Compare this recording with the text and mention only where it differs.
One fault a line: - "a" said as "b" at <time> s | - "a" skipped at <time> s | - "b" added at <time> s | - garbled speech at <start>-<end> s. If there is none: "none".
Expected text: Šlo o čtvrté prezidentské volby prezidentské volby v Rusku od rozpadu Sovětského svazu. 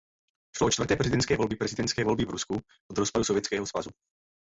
none